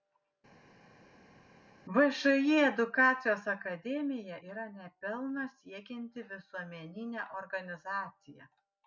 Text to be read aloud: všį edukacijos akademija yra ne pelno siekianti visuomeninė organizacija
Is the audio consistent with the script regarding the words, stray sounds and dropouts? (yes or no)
yes